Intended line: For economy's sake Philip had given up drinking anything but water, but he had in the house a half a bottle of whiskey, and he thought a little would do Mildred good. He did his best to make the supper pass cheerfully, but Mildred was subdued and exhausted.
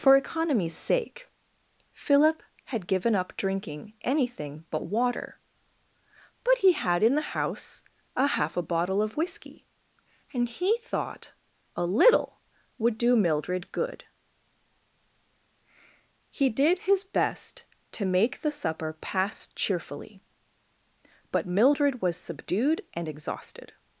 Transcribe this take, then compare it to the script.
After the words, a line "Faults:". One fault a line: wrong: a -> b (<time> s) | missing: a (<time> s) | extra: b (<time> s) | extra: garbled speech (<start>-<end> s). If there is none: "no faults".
For economy's sake Philip had given up drinking anything but water, but he had in the house a half a bottle of whiskey, and he thought a little would do Mildred good. He did his best to make the supper pass cheerfully, but Mildred was subdued and exhausted.
Faults:
no faults